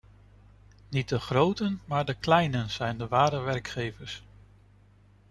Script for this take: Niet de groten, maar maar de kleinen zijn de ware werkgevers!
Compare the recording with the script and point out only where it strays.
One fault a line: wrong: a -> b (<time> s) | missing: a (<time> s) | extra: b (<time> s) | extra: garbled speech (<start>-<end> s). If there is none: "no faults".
missing: maar (2.0 s)